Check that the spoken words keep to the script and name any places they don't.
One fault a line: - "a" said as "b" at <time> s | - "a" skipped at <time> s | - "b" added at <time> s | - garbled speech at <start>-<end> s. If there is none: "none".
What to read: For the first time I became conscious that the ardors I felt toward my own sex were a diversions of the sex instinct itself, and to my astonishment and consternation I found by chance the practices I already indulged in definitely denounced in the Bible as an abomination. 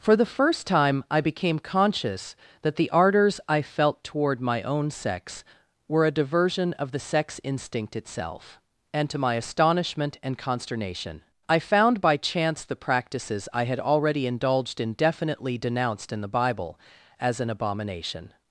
- "diversions" said as "diversion" at 6.2 s
- "had" added at 13.7 s